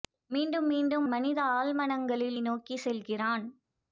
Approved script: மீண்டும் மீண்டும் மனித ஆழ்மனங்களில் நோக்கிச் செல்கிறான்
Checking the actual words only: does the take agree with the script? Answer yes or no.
yes